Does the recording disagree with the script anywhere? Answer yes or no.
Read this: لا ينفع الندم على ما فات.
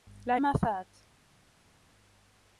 yes